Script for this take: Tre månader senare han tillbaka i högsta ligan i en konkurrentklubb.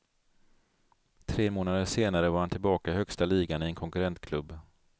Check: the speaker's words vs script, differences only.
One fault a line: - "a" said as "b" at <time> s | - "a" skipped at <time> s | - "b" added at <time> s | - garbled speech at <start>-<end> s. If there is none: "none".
- "var" added at 2.3 s